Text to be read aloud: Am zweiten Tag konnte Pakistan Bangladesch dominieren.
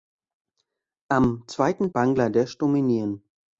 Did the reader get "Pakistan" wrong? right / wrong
wrong